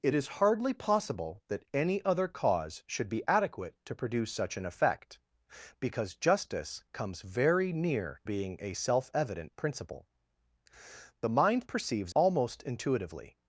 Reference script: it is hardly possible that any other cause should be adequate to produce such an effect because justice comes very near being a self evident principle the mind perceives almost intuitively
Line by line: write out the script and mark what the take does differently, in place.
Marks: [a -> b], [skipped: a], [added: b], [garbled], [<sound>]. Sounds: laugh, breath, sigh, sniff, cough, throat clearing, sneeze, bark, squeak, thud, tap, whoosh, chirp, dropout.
it is hardly possible that any other cause should be adequate to produce such an effect because justice comes very near being a self evident principle the mind perceives almost intuitively